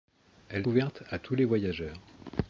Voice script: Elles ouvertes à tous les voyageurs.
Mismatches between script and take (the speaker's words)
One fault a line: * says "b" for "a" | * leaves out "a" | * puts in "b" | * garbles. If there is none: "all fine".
all fine